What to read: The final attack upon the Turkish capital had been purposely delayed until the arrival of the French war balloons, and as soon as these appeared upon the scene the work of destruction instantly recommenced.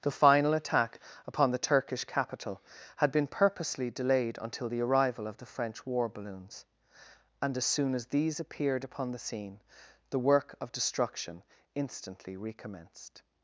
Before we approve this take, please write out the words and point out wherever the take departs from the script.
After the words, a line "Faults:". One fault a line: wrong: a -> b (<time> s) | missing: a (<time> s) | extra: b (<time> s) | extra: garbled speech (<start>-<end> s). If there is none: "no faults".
The final attack upon the Turkish capital had been purposely delayed until the arrival of the French war balloons, and as soon as these appeared upon the scene the work of destruction instantly recommenced.
Faults:
no faults